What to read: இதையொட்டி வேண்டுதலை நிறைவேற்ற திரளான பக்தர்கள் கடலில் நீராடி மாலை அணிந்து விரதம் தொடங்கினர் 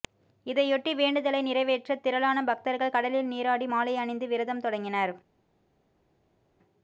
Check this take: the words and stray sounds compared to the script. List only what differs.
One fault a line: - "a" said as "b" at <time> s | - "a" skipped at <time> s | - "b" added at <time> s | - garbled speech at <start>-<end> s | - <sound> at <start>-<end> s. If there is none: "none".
none